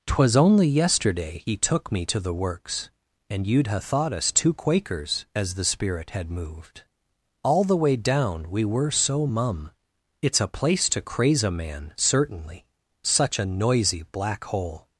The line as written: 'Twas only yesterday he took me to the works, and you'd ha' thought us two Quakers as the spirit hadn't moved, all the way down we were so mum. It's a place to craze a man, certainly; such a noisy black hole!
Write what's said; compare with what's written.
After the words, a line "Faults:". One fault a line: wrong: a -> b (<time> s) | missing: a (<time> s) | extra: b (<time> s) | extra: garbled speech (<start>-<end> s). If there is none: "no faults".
'Twas only yesterday he took me to the works, and you'd ha' thought us two Quakers as the spirit had moved, all the way down we were so mum. It's a place to craze a man, certainly; such a noisy black hole!
Faults:
wrong: hadn't -> had (6.1 s)